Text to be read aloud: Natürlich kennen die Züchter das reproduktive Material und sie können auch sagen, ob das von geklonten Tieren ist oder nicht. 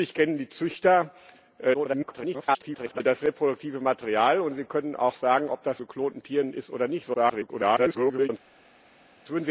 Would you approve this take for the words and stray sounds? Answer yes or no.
no